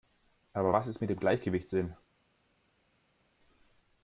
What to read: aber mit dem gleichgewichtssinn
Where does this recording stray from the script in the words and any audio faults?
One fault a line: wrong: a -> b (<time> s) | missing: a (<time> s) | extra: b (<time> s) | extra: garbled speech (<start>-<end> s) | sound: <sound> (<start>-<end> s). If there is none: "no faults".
extra: was ist (0.7 s)